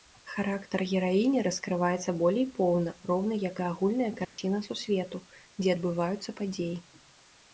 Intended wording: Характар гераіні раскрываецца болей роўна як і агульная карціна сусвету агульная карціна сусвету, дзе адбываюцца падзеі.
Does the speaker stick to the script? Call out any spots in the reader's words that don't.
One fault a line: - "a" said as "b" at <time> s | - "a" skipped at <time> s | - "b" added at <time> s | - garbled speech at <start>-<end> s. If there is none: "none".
- "поўна" added at 2.5 s
- "агульная карціна сусвету" skipped at 5.2 s